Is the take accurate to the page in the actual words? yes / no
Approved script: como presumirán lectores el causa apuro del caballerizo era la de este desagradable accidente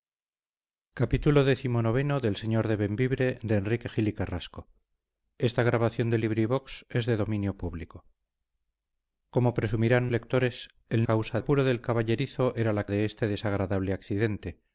yes